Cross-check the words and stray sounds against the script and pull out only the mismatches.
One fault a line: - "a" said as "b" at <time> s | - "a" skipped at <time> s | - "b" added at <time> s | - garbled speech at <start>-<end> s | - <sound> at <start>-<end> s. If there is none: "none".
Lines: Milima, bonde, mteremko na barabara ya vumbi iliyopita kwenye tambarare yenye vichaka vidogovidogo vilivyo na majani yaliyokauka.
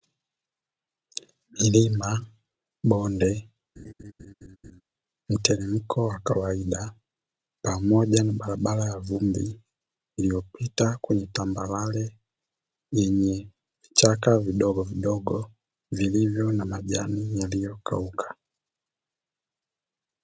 - laugh at 3.8-4.8 s
- "wa kawaida pamoja" added at 6.1 s